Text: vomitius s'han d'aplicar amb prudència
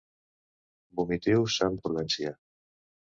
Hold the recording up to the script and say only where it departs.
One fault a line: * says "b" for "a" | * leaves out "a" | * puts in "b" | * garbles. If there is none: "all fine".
* leaves out "d'aplicar"